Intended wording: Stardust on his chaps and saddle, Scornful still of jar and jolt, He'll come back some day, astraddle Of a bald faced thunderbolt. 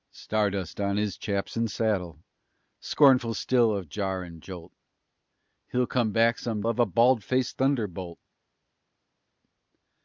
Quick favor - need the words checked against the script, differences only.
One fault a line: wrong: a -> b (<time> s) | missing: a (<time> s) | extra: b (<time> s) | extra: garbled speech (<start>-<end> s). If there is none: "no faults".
missing: day astraddle (6.6 s)